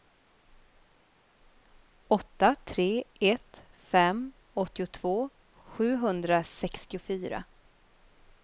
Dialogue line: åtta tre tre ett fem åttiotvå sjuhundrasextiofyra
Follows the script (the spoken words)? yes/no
no